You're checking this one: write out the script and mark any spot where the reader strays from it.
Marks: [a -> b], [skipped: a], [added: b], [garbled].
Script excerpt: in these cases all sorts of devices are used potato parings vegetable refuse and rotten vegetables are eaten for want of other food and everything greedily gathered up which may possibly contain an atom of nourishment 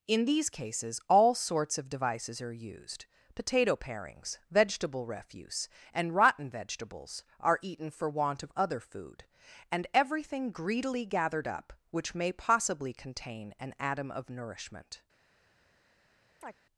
in these cases all sorts of devices are used potato parings vegetable refuse and rotten vegetables are eaten for want of other food and everything greedily gathered up which may possibly contain an atom of nourishment